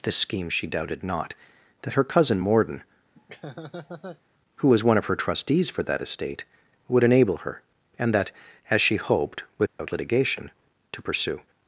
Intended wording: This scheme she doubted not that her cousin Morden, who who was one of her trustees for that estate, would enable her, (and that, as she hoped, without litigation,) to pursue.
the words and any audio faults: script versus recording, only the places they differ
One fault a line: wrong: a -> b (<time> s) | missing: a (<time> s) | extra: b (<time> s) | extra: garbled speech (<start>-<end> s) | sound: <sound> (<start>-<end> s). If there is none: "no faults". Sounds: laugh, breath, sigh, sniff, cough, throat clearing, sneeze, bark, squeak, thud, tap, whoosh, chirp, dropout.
sound: laugh (3.1-4.2 s)
missing: who (4.7 s)
sound: dropout (9.7-9.8 s)